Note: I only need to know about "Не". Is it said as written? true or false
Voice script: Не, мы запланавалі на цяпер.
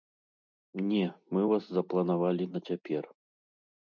true